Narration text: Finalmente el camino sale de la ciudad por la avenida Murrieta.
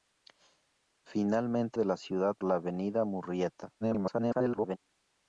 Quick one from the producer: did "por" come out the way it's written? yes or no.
no